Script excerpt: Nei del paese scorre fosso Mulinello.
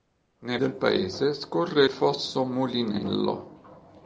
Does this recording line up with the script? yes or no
yes